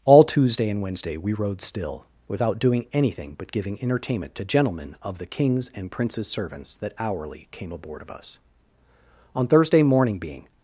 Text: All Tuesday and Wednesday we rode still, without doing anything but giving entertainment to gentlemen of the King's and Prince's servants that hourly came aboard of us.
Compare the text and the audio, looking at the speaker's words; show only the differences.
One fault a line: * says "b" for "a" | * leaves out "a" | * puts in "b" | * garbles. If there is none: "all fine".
* puts in "On Thursday morning being"